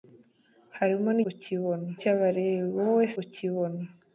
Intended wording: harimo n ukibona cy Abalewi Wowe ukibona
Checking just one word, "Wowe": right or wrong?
right